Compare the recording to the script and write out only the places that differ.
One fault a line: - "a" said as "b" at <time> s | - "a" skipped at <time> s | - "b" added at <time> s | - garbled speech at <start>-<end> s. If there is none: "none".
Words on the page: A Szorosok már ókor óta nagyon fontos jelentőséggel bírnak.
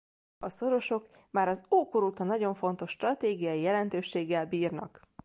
- "az" added at 1.5 s
- "stratégiai" added at 2.9 s